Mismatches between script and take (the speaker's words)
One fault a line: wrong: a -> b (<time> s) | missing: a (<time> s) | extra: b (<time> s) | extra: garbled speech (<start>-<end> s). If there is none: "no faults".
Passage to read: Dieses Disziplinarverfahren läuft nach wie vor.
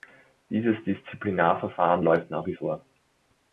no faults